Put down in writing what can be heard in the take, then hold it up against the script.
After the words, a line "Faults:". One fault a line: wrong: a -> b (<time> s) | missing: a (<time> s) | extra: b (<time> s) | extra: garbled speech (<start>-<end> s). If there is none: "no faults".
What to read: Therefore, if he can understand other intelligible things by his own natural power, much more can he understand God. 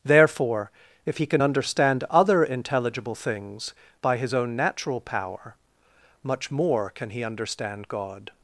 Therefore, if he can understand other intelligible things by his own natural power, much more can he understand God.
Faults:
no faults